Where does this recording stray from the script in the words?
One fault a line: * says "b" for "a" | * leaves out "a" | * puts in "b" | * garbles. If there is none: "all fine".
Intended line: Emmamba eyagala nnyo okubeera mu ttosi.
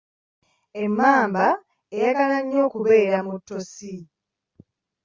all fine